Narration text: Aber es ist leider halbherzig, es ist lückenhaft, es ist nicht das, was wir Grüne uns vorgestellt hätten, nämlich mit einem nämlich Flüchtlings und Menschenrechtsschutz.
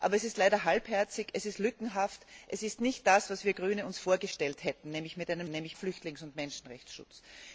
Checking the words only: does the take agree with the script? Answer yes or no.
yes